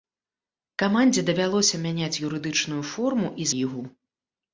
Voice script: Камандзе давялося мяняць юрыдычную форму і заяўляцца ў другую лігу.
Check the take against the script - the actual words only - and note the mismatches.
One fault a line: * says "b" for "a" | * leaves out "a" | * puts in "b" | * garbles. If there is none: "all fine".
* leaves out "заяўляцца ў другую"